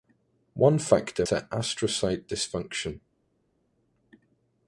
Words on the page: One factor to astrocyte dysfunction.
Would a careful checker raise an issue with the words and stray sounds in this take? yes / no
no